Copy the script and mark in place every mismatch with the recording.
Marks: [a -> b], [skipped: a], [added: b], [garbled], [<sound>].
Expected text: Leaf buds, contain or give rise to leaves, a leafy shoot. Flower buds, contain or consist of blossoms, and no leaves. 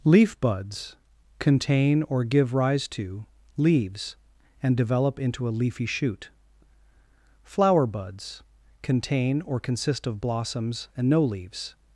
Leaf buds, contain or give rise to leaves, [added: and develop into] a leafy shoot. Flower buds, contain or consist of blossoms, and no leaves.